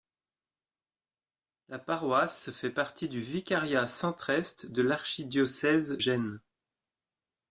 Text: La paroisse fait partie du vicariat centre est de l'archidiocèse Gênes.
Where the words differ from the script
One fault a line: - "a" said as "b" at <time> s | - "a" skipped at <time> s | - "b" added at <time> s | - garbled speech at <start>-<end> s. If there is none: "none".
none